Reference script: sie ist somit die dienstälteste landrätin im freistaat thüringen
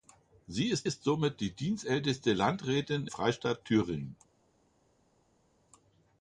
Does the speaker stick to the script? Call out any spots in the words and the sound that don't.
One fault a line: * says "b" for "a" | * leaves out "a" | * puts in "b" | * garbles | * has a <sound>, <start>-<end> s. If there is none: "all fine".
* puts in "ist"
* leaves out "im"